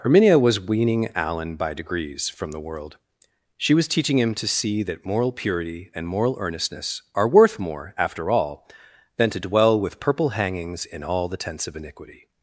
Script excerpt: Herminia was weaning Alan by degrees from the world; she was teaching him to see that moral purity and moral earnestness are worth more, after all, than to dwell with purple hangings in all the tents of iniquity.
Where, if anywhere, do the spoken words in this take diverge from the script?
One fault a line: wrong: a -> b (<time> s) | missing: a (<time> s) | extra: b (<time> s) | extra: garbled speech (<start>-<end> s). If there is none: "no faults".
no faults